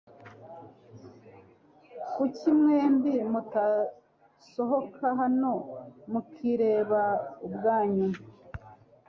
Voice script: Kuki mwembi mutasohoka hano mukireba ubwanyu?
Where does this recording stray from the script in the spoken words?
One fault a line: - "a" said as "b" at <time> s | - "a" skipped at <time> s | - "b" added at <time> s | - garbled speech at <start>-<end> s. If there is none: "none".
none